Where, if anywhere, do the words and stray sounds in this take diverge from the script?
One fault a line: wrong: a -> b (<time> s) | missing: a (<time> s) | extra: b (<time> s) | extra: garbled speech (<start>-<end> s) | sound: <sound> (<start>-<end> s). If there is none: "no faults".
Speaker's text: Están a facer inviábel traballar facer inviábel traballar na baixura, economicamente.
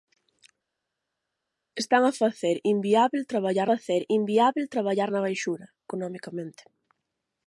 no faults